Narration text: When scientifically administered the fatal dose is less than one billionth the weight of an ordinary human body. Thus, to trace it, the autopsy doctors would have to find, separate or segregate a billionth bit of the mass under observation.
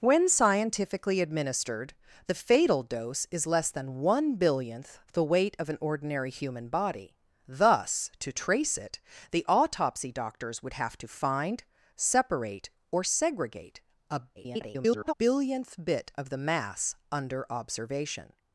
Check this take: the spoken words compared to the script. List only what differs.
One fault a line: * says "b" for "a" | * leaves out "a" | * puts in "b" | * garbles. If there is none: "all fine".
* garbles